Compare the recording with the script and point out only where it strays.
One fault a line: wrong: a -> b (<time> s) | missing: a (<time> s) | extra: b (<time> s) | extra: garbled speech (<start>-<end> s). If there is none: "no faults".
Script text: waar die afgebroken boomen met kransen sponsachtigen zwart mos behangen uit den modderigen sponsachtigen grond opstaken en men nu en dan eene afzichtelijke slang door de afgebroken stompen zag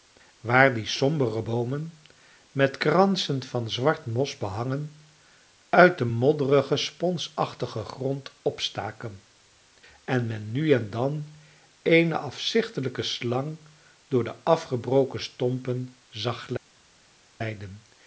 wrong: afgebroken -> sombere (0.8 s)
wrong: sponsachtigen -> van (3.4 s)